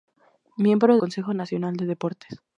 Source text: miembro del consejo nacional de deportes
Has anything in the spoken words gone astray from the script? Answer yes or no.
yes